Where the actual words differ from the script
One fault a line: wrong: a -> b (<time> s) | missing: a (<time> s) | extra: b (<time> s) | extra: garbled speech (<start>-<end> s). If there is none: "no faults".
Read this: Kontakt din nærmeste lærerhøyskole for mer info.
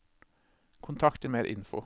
missing: nærmeste lærerhøyskole for (1.3 s)